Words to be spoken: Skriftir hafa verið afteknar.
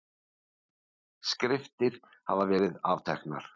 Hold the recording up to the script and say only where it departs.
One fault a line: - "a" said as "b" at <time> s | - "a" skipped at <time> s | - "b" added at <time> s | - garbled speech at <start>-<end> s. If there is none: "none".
none